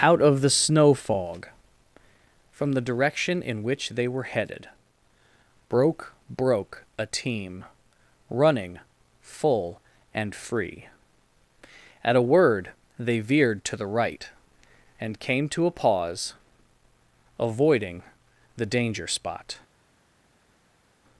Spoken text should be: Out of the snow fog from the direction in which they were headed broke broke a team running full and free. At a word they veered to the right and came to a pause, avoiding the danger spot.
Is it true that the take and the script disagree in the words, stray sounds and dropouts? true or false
false